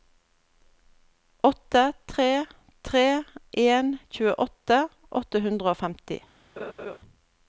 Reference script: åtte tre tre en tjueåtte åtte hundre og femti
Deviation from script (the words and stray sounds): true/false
true